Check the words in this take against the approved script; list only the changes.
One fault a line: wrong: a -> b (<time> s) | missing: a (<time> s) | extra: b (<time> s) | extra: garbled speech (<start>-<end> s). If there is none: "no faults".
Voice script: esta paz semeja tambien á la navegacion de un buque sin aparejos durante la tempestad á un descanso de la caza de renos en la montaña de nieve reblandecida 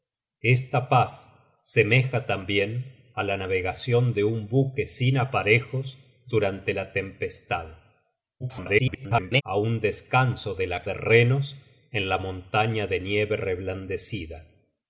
extra: garbled speech (8.4-9.4 s)
missing: caza (10.8 s)